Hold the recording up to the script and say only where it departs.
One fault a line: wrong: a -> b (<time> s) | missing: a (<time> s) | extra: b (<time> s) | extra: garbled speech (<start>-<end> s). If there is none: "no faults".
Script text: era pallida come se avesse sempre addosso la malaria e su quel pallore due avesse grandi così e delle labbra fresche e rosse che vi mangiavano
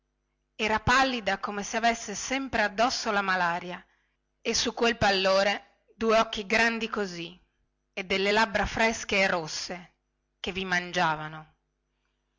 wrong: avesse -> occhi (6.2 s)